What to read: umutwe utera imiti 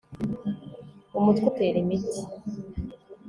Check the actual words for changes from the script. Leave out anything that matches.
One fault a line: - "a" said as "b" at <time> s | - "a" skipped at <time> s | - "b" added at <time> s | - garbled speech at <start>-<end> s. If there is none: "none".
none